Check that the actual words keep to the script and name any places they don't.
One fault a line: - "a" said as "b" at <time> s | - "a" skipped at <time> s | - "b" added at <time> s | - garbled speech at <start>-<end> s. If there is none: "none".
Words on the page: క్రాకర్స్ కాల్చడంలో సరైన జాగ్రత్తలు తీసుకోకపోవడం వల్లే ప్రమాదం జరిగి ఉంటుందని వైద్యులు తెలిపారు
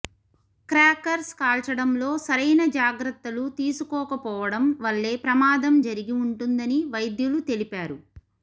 none